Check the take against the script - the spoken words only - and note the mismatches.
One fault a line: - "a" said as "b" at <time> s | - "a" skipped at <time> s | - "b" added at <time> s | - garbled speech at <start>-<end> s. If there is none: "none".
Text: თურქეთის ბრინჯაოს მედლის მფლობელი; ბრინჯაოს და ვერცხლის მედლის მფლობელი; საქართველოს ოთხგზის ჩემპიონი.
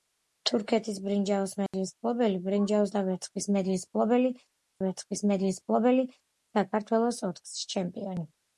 - "ვერცხლის მედლის მფლობელი" added at 4.9 s